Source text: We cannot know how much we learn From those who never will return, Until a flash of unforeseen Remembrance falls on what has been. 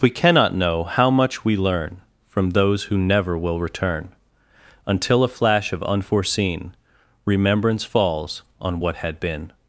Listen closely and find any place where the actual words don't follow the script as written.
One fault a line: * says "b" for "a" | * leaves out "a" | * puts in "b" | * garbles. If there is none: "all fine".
* says "had" for "has"